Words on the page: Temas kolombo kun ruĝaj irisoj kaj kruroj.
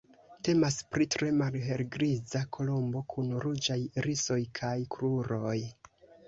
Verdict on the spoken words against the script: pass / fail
fail